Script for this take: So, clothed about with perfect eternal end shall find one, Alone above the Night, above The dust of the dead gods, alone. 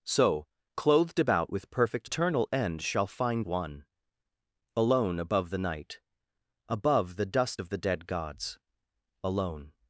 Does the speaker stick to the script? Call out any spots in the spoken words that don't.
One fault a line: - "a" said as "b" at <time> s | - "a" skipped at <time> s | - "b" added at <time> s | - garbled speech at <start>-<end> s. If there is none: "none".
none